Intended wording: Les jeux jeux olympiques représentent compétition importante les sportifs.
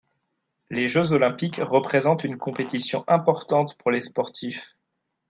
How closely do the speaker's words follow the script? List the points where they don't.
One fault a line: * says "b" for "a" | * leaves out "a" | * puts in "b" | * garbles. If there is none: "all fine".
* leaves out "jeux"
* puts in "une"
* puts in "pour"